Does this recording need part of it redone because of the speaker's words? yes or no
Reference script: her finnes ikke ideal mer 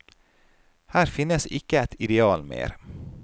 yes